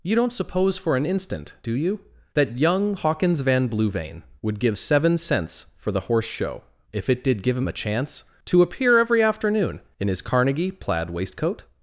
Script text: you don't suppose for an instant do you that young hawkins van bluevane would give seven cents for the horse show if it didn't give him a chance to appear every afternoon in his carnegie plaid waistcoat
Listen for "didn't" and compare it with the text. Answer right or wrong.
wrong